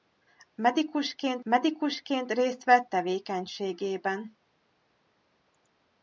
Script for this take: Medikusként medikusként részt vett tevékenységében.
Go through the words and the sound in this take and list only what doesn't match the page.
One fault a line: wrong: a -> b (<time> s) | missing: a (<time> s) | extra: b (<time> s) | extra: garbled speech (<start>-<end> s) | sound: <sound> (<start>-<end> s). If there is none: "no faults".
no faults